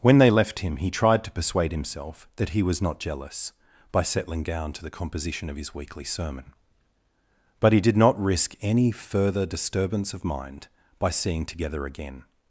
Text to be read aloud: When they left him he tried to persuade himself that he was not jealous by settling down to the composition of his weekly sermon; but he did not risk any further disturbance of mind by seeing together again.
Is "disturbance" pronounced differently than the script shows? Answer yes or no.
no